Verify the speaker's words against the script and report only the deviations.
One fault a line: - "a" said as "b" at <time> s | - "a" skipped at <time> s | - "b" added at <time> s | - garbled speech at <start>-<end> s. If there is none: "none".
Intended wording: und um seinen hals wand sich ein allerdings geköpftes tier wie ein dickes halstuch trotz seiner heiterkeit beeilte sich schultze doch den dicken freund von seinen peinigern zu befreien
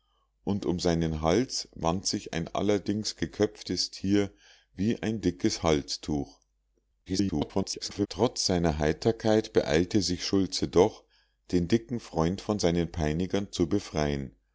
- garbled speech at 7.1-8.1 s